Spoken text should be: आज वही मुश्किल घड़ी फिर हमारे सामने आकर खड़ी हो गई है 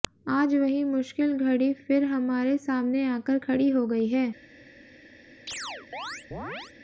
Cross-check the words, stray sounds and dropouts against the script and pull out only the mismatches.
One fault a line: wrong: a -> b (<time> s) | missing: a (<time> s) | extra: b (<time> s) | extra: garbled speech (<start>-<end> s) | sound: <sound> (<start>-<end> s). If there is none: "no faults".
sound: chirp (5.5-6.7 s)